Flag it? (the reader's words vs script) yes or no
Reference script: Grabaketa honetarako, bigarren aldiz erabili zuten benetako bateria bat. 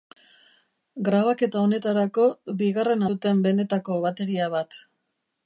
yes